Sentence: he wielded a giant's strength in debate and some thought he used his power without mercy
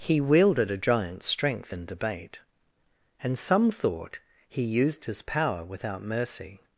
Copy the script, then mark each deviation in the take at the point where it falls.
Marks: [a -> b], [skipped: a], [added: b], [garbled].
he wielded a giant's strength in debate and some thought he used his power without mercy